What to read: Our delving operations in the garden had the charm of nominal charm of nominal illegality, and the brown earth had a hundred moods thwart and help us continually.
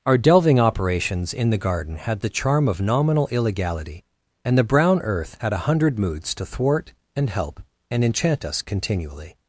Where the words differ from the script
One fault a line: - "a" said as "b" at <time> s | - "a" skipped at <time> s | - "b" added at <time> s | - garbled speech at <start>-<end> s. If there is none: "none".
- "charm of nominal" skipped at 3.3 s
- "to" added at 6.3 s
- "and enchant" added at 7.9 s